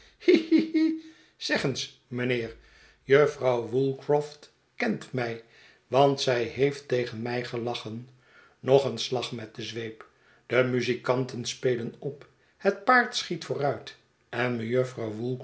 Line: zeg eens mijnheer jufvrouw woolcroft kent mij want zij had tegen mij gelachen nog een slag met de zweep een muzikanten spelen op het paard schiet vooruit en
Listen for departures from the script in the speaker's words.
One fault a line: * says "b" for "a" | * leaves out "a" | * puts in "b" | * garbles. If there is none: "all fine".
* says "heeft" for "had"
* says "de" for "een"